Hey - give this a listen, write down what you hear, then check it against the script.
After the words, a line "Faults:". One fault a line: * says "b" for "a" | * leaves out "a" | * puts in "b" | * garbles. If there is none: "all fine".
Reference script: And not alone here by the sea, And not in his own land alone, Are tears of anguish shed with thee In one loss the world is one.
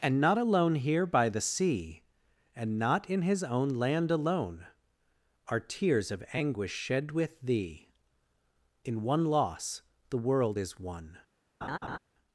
And not alone here by the sea, And not in his own land alone, Are tears of anguish shed with thee In one loss the world is one.
Faults:
all fine